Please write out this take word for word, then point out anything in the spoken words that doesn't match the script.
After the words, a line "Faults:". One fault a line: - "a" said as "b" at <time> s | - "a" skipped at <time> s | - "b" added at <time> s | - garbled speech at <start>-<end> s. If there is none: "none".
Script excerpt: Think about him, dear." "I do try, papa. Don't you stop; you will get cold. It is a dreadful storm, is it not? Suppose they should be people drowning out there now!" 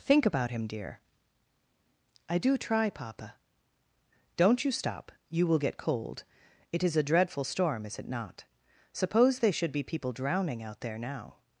Think about him, dear." "I do try, papa. Don't you stop; you will get cold. It is a dreadful storm, is it not? Suppose they should be people drowning out there now!"
Faults:
none